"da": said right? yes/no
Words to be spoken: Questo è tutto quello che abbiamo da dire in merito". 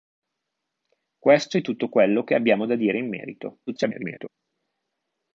yes